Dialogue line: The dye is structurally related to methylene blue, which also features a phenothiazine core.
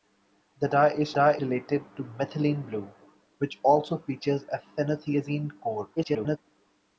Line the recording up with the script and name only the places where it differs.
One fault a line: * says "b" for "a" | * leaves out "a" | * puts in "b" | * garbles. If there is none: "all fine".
* says "dye" for "structurally"
* garbles